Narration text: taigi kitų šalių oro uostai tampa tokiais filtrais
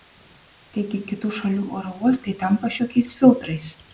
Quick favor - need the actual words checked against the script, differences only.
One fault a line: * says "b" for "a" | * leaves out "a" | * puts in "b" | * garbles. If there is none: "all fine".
all fine